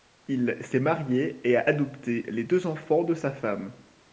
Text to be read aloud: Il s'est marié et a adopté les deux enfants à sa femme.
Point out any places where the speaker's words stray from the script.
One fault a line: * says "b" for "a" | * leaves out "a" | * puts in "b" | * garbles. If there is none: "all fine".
* says "de" for "à"